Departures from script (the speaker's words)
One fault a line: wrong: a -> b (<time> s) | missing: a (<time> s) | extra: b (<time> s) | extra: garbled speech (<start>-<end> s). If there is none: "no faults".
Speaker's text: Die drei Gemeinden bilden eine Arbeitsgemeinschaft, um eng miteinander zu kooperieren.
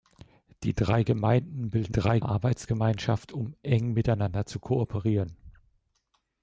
wrong: eine -> drei (1.9 s)